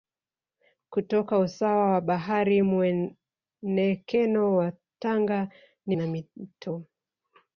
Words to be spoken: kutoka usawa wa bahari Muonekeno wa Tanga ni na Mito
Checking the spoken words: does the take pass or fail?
pass